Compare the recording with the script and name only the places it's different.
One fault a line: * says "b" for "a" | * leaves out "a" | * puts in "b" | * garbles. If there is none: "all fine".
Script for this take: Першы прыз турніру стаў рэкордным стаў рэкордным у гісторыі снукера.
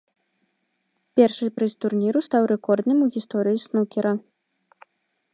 * leaves out "стаў рэкордным"